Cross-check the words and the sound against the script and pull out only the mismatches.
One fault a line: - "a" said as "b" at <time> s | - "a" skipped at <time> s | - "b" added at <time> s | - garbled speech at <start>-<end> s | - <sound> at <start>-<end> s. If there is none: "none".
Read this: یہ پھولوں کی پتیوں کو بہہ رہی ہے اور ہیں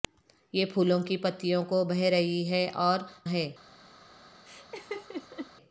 - laugh at 4.5-5.5 s